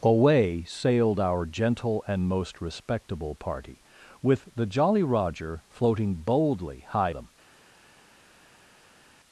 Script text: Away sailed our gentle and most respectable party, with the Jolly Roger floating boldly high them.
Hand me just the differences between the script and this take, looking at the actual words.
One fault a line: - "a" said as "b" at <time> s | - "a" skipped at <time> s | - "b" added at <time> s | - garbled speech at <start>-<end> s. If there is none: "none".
none